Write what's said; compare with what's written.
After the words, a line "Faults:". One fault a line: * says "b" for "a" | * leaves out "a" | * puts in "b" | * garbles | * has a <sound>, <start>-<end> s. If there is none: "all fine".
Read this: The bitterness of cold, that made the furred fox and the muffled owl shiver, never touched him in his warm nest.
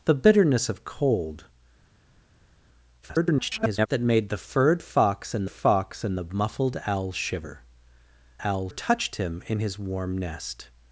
The bitterness of cold, [garbled] that made the furred fox and fox and the muffled owl shiver, owl touched him in his warm nest.
Faults:
* garbles
* puts in "fox and"
* says "owl" for "never"